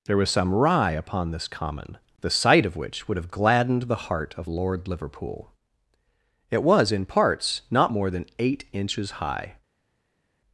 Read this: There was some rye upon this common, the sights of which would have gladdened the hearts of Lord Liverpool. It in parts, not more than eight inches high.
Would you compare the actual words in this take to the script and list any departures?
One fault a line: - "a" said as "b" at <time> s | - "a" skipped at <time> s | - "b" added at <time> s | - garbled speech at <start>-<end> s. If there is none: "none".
- "sights" said as "sight" at 2.3 s
- "hearts" said as "heart" at 4.1 s
- "was" added at 6.6 s